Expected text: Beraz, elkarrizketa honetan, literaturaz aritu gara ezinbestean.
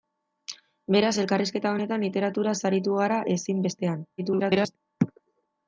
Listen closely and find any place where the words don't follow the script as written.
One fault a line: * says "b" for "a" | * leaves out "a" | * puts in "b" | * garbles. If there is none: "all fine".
* garbles